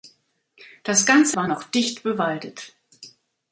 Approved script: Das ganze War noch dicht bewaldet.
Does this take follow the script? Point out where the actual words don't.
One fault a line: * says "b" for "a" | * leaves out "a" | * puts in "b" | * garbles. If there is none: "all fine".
all fine